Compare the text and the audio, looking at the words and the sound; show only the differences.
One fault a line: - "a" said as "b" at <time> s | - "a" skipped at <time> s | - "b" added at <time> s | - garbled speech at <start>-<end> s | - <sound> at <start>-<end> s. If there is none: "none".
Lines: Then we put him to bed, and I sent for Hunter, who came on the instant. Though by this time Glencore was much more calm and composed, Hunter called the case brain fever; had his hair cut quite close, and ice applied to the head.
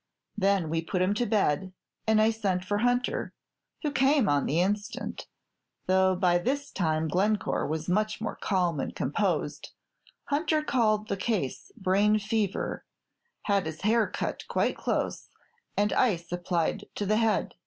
none